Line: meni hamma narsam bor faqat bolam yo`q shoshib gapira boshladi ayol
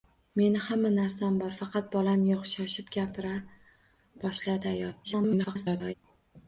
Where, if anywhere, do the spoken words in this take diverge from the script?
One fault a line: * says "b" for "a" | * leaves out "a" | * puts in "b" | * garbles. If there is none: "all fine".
* garbles